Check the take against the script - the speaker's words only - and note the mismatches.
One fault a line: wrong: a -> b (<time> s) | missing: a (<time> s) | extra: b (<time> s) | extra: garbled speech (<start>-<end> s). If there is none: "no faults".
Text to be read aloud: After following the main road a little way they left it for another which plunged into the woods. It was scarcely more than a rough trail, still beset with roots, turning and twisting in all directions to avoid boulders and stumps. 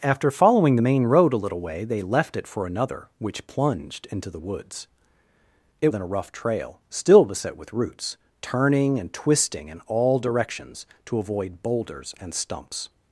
missing: was scarcely more (5.9 s)